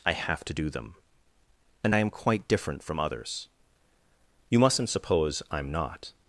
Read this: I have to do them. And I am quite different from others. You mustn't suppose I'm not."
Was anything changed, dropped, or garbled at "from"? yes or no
no